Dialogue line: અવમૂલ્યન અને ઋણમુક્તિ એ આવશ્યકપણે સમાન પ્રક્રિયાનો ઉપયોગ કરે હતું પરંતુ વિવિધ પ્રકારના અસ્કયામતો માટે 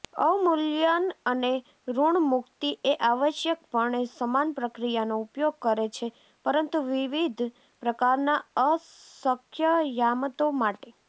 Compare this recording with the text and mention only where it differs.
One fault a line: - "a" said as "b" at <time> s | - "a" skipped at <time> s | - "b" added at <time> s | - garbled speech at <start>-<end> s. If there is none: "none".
- "હતું" said as "છે" at 5.9 s